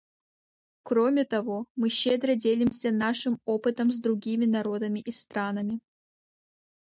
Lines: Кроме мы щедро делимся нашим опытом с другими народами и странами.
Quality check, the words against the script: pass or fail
fail